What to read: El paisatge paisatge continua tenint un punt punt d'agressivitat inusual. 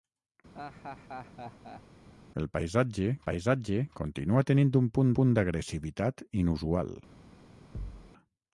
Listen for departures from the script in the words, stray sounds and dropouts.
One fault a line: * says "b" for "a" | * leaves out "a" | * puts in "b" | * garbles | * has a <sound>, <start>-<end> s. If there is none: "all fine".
* has a laugh, 0.5-1.8 s
* has a thud, 7.7-8.1 s